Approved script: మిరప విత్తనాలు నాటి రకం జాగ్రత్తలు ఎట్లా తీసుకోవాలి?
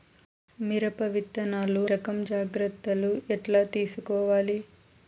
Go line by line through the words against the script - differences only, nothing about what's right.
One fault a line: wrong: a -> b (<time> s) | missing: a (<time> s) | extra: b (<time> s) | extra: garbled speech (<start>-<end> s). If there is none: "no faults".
missing: నాటి (1.8 s)